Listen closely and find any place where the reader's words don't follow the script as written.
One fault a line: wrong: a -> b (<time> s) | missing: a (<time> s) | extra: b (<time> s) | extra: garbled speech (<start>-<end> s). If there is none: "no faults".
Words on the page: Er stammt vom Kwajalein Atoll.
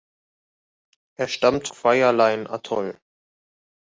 missing: vom (1.7 s)